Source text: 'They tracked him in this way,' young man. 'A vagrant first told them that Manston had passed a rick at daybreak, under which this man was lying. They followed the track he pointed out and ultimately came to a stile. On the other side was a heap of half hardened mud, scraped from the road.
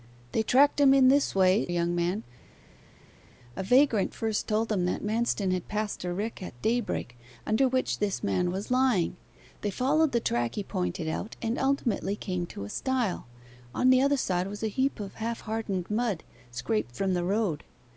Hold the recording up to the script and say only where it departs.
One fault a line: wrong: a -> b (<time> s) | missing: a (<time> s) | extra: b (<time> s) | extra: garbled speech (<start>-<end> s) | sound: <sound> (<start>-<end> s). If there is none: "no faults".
no faults